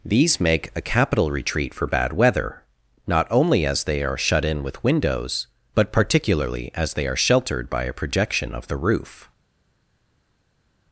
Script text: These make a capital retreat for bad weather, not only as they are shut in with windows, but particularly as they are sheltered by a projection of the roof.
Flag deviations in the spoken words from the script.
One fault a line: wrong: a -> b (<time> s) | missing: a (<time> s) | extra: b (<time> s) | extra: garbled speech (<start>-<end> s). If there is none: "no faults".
no faults